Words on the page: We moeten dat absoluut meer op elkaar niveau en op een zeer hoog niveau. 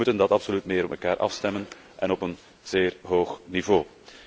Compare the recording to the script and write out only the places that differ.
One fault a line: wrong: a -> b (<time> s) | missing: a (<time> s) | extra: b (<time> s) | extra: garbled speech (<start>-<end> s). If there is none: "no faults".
wrong: niveau -> afstemmen (1.2 s)